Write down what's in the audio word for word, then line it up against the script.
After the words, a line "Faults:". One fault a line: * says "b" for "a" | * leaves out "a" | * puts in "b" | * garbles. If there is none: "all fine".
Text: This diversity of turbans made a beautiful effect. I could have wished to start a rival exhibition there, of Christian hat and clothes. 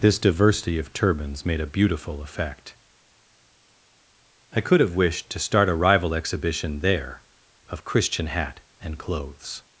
This diversity of turbans made a beautiful effect. I could have wished to start a rival exhibition there, of Christian hat and clothes.
Faults:
all fine